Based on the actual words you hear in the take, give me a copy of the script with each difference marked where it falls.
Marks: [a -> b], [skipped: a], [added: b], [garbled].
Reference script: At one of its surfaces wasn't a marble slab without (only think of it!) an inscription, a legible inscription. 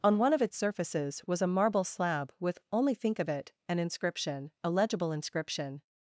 [At -> On] one of its surfaces [wasn't -> was] a marble slab [without -> with] (only think of it!) an inscription, a legible inscription.